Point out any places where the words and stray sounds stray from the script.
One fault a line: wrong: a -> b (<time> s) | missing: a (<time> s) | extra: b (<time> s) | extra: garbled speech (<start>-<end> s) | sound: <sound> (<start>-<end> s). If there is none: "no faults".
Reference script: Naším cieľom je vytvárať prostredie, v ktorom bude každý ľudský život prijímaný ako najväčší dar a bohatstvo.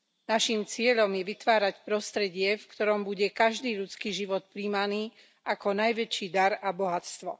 no faults